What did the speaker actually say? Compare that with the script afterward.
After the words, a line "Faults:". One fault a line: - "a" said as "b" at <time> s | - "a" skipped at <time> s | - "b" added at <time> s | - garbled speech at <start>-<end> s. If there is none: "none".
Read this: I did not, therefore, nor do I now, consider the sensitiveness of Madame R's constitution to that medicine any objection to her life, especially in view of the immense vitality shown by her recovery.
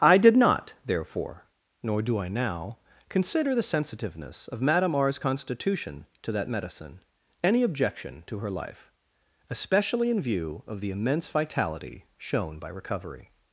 I did not, therefore, nor do I now, consider the sensitiveness of Madame R's constitution to that medicine any objection to her life, especially in view of the immense vitality shown by recovery.
Faults:
- "her" skipped at 12.7 s